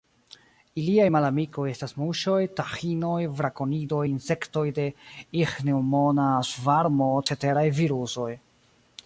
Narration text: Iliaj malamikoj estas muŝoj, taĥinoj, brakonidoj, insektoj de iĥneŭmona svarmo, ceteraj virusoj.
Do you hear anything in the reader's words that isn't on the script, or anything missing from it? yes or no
no